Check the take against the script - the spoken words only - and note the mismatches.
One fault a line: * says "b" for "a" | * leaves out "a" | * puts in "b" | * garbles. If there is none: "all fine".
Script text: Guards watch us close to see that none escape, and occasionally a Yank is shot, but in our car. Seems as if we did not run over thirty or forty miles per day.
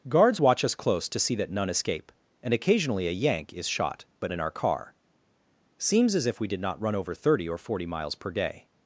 all fine